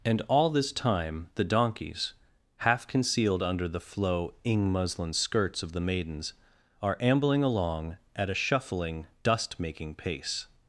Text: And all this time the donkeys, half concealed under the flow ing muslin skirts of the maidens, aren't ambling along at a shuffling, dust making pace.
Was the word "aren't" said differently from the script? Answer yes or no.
yes